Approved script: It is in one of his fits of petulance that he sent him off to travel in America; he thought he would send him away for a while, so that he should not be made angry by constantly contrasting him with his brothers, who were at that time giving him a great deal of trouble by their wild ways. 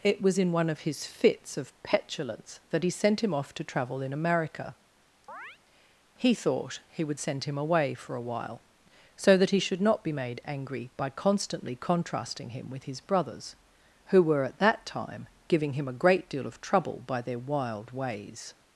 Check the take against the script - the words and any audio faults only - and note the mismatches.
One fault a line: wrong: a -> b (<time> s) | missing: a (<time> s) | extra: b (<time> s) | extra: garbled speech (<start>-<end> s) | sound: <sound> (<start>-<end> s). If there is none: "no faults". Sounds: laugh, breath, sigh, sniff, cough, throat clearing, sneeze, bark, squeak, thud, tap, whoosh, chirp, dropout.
wrong: is -> was (0.2 s)
sound: chirp (5.3-5.6 s)